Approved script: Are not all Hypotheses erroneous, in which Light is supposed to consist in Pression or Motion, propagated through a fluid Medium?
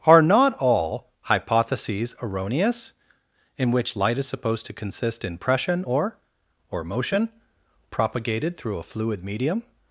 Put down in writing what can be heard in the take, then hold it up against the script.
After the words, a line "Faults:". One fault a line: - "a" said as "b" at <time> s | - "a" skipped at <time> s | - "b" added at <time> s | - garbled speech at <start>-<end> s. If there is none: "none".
Are not all Hypotheses erroneous, in which Light is supposed to consist in Pression or or Motion, propagated through a fluid Medium?
Faults:
- "or" added at 6.7 s